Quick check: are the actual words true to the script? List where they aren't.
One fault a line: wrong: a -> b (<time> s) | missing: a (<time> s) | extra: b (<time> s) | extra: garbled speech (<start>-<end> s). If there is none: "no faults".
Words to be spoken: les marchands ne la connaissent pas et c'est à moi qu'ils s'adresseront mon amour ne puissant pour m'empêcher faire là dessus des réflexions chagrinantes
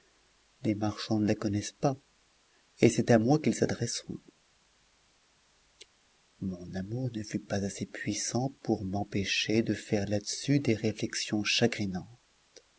extra: fut pas assez (7.2 s)
extra: de (9.6 s)